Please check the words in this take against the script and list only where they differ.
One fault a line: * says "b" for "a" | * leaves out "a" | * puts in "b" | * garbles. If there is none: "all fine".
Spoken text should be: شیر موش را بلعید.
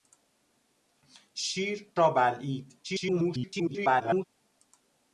* leaves out "موش"
* garbles